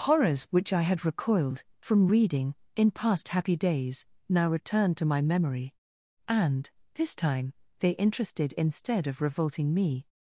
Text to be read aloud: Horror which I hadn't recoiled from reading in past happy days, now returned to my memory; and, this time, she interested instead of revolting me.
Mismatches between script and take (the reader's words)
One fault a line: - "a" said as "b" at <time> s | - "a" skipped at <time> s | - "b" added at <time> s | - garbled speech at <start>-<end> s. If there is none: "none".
- "Horror" said as "Horrors" at 0.1 s
- "hadn't" said as "had" at 0.8 s
- "she" said as "they" at 7.8 s